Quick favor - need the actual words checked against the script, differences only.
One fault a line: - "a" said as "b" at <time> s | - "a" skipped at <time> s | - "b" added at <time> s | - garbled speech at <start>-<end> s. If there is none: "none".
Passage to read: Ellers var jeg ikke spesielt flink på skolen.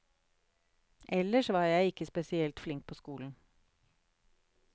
none